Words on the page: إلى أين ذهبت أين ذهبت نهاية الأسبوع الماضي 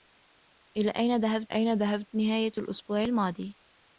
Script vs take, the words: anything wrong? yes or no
no